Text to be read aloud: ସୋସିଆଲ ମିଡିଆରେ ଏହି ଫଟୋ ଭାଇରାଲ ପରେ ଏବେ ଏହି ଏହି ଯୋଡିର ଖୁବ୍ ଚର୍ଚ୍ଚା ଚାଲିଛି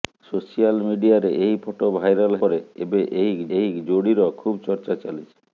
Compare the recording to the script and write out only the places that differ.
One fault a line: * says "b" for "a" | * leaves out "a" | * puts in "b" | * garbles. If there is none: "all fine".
all fine